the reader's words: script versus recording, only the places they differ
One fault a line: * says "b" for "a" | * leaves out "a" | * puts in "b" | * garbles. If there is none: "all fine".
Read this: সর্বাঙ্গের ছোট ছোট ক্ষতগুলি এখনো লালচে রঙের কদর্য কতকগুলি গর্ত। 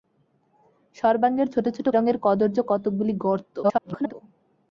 * leaves out "ক্ষতগুলি এখনো লালচে"
* garbles